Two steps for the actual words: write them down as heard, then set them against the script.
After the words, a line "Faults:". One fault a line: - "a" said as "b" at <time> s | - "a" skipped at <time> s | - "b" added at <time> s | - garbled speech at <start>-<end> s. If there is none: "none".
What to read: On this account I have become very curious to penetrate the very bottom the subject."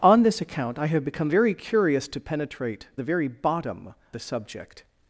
On this account I have become very curious to penetrate the very bottom the subject."
Faults:
none